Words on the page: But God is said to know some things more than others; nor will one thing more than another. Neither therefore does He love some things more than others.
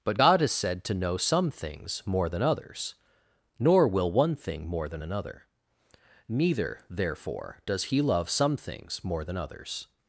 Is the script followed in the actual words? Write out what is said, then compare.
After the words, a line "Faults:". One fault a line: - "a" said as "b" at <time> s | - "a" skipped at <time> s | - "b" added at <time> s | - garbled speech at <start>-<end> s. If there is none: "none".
But God is said to know some things more than others; nor will one thing more than another. Neither therefore does He love some things more than others.
Faults:
none